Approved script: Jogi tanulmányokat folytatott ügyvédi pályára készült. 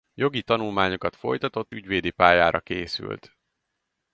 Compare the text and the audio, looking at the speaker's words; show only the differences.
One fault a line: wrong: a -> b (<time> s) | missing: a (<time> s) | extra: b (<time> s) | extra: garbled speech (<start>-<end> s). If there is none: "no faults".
no faults